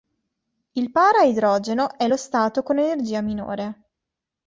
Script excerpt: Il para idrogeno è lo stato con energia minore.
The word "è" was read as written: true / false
true